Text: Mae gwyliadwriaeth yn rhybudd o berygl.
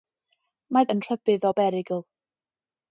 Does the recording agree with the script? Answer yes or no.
no